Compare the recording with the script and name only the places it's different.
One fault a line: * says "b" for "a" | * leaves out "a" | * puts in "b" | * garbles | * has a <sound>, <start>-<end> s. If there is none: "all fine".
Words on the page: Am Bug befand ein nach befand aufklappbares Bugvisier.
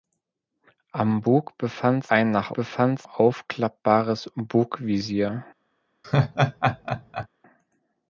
* has a laugh, 6.0-7.3 s